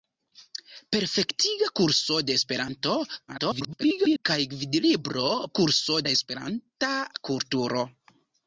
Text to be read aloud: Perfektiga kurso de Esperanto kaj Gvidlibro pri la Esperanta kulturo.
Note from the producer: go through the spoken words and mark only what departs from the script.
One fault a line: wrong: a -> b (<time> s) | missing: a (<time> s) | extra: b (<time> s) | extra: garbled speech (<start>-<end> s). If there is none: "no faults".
extra: garbled speech (3.3-4.2 s)
wrong: pri -> kurso (5.6 s)